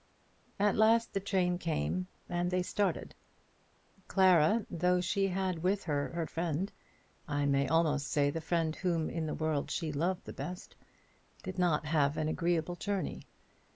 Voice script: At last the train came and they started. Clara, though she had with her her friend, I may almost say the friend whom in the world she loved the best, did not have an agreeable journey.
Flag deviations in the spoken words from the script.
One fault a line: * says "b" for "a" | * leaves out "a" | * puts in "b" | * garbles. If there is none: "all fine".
all fine